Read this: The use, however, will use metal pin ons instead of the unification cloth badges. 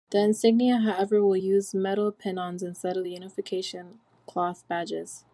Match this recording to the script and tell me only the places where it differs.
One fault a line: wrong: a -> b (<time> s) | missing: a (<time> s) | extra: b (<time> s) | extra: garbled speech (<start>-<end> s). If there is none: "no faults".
wrong: use -> insignia (0.2 s)